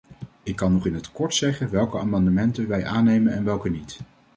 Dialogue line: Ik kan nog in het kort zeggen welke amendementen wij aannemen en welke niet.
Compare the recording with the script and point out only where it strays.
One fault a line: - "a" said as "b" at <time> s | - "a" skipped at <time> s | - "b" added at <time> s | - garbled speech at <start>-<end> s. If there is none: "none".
none